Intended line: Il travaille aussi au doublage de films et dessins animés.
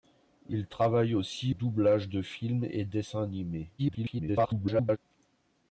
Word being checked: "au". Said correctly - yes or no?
no